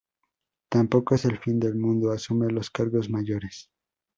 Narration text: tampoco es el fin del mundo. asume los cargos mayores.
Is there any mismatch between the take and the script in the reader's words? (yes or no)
no